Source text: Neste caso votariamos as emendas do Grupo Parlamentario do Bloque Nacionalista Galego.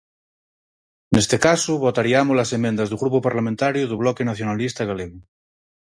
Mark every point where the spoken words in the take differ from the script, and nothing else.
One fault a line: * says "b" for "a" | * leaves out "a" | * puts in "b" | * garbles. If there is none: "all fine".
all fine